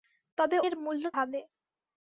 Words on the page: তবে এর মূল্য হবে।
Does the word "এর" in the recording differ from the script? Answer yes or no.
no